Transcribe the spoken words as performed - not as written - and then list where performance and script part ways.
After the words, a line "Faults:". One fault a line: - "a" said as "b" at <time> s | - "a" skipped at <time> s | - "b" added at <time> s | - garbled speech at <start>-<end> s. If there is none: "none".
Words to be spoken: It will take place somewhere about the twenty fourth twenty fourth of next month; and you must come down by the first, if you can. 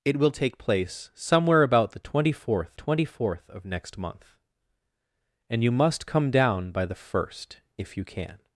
It will take place somewhere about the twenty fourth twenty fourth of next month; and you must come down by the first, if you can.
Faults:
none